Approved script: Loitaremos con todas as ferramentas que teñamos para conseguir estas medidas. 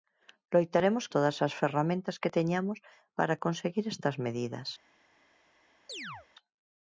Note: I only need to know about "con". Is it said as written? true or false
false